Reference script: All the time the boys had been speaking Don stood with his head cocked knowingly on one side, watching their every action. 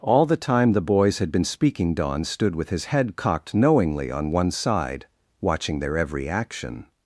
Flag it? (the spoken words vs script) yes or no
no